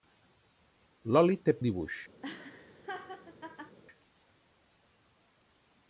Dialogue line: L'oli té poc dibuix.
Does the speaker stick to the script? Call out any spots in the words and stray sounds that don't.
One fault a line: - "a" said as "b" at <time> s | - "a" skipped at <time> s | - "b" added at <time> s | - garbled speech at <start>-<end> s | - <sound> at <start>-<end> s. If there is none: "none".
- "poc" skipped at 1.6 s
- laugh at 2.2-3.8 s